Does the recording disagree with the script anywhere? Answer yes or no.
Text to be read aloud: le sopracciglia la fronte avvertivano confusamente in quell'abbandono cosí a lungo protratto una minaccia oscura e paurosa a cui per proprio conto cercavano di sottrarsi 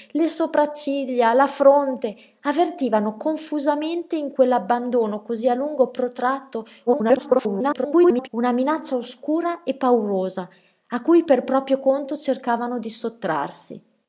yes